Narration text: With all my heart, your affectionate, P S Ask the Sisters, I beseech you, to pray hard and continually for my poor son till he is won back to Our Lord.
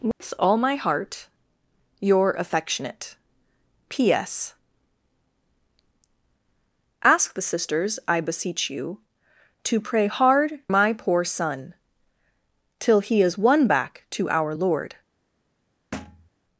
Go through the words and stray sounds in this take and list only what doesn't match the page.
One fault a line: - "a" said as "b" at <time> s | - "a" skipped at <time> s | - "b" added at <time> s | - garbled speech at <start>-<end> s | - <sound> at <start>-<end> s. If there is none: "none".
- dropout at 0.1-0.2 s
- "and continually for" skipped at 10.5 s
- thud at 15.9-16.3 s